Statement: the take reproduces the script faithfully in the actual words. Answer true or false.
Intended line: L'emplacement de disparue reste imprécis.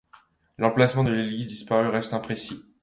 false